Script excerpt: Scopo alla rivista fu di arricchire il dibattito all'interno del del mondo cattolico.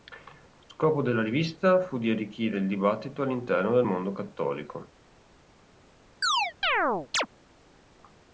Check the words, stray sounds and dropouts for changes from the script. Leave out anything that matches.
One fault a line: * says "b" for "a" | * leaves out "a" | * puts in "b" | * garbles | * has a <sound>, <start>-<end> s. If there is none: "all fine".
* says "della" for "alla"
* leaves out "del"
* has a chirp, 6.2-7.3 s